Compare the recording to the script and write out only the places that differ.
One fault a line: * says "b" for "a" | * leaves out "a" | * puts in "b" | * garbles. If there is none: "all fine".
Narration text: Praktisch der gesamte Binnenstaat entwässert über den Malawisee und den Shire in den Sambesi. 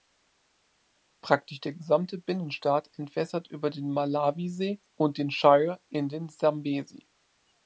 all fine